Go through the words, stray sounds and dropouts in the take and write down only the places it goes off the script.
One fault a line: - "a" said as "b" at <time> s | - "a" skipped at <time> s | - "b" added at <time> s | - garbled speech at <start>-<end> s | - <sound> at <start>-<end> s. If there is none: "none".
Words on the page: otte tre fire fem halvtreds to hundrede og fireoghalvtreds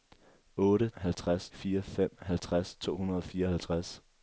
- "tre" said as "halvtreds" at 1.0 s